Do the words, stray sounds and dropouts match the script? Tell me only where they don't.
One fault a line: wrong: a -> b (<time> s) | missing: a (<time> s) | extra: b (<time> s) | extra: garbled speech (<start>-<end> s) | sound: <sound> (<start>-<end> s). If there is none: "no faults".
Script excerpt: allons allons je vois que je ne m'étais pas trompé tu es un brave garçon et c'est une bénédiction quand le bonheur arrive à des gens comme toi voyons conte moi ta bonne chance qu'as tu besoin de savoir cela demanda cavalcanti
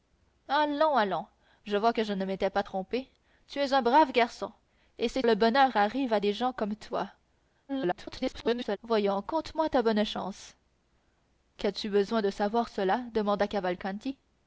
missing: une bénédiction quand (5.3 s)
extra: garbled speech (7.7-8.8 s)